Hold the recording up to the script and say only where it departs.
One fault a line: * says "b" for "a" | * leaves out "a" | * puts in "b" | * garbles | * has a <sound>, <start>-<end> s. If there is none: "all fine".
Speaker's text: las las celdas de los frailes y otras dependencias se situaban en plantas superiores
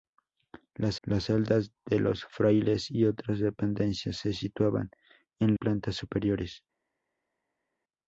all fine